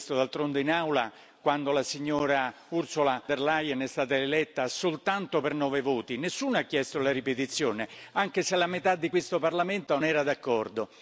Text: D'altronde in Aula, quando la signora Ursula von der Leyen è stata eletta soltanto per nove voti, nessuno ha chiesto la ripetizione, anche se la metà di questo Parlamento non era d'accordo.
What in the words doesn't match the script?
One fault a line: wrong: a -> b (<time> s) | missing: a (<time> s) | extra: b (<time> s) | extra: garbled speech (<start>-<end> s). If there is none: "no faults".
missing: von (3.2 s)
missing: non (10.0 s)